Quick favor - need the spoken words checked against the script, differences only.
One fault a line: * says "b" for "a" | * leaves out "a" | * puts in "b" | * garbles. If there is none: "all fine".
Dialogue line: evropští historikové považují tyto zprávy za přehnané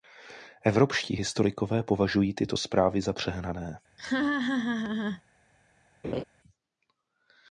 all fine